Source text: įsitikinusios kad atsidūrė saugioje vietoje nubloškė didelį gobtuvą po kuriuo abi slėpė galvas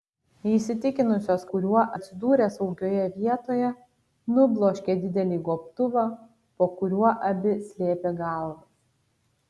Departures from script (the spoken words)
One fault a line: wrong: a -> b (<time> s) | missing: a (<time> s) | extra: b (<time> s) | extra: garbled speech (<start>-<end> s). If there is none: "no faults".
wrong: kad -> kuriuo (1.5 s)